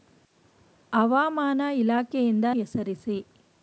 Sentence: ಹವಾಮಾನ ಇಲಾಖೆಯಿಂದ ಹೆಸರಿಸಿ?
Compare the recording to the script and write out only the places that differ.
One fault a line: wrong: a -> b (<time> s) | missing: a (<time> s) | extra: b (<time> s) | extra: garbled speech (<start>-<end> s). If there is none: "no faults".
no faults